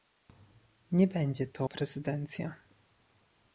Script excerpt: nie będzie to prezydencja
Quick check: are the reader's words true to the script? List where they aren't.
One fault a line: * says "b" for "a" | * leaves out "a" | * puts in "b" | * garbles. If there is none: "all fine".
all fine